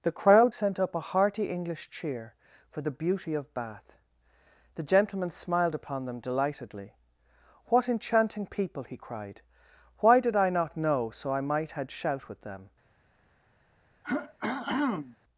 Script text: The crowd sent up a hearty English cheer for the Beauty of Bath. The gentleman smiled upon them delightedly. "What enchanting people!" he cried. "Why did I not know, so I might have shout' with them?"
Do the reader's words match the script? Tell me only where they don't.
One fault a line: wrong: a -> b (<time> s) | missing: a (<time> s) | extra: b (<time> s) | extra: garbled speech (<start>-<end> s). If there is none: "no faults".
wrong: have -> had (11.7 s)